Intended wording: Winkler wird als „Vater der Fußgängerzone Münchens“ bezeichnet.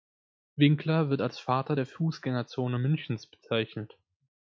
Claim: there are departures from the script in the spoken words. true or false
false